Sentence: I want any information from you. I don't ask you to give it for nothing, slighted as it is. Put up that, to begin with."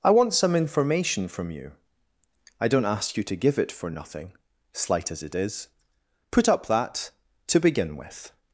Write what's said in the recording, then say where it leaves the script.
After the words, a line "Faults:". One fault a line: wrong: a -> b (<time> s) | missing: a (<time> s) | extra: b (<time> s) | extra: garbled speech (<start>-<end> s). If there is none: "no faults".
I want some information from you. I don't ask you to give it for nothing, slight as it is. Put up that, to begin with."
Faults:
wrong: any -> some (0.3 s)
wrong: slighted -> slight (4.7 s)